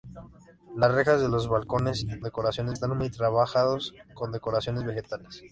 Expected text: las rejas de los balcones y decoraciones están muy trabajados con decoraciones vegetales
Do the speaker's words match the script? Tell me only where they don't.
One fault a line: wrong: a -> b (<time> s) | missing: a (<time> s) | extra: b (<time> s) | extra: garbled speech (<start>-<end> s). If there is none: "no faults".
no faults